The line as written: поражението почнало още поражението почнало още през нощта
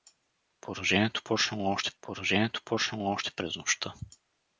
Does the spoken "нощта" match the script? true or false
true